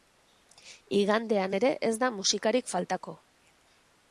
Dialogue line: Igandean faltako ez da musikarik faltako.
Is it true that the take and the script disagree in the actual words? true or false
true